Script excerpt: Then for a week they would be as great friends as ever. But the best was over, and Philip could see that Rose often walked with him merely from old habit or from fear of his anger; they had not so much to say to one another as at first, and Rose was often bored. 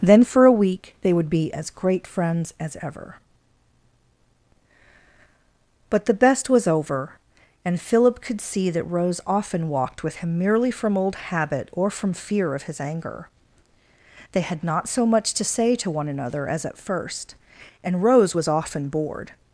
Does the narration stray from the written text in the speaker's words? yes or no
no